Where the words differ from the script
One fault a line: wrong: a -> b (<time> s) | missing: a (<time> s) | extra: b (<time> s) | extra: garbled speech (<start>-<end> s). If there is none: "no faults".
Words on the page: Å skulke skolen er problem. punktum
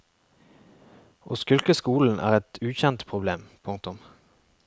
extra: et ukjent (2.4 s)